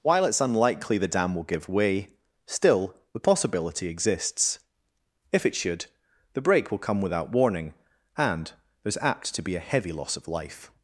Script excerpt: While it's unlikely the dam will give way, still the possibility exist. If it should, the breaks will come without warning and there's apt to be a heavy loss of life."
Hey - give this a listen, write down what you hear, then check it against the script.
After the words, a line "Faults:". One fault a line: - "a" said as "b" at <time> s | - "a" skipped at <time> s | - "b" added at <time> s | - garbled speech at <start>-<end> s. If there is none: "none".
While it's unlikely the dam will give way, still the possibility exists. If it should, the break will come without warning and there's apt to be a heavy loss of life."
Faults:
- "exist" said as "exists" at 3.9 s
- "breaks" said as "break" at 6.4 s